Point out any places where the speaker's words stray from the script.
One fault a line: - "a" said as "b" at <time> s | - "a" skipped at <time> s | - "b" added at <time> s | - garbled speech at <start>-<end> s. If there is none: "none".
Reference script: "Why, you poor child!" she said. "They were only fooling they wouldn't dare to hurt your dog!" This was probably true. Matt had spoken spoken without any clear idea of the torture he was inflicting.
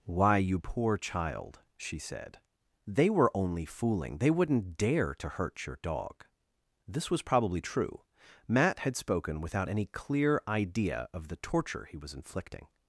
- "spoken" skipped at 9.4 s